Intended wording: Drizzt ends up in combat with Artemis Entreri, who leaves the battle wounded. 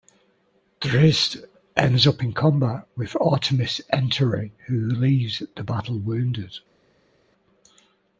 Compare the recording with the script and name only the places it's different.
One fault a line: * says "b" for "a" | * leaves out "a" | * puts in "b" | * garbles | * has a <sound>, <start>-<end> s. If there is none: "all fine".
all fine